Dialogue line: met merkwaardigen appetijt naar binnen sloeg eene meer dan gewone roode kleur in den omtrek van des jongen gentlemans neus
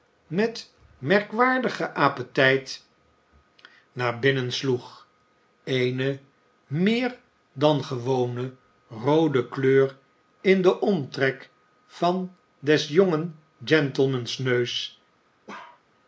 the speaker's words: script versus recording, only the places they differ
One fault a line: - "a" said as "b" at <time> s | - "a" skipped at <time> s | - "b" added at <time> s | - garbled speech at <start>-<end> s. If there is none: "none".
none